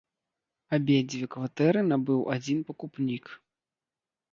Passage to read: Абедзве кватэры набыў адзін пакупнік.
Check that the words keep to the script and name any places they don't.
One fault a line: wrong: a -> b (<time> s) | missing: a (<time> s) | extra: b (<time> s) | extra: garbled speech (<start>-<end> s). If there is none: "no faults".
no faults